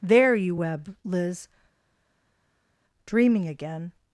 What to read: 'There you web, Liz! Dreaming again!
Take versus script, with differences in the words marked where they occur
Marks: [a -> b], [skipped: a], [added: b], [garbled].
'There you web, Liz! Dreaming again!